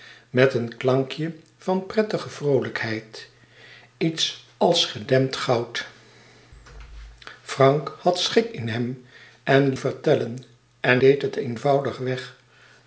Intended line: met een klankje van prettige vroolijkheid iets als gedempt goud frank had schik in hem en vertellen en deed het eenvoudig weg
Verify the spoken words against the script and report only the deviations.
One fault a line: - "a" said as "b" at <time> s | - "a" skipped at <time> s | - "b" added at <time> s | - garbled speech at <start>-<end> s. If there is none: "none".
none